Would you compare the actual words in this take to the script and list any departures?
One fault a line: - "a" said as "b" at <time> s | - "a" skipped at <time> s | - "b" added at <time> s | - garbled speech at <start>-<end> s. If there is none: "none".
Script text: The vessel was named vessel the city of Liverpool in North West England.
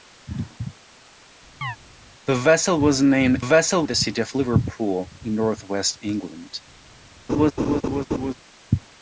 none